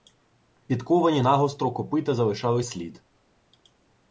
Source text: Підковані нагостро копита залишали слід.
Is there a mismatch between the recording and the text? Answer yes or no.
no